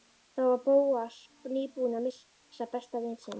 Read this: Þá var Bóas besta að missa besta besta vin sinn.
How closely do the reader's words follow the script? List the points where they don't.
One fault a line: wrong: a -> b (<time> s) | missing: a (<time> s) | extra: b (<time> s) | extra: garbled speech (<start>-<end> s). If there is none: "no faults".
wrong: besta -> nýbúinn (1.6 s)
missing: besta (3.0 s)